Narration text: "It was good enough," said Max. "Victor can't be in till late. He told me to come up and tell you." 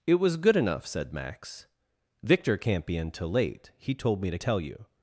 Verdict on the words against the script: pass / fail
fail